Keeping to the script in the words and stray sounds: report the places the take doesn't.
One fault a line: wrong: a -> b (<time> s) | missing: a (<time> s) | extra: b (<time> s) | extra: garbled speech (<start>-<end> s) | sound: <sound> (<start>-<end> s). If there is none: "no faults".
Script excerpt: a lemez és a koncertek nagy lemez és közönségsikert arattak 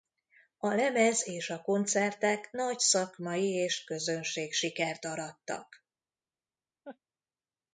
wrong: lemez -> szakmai (2.8 s)
sound: laugh (6.8-7.0 s)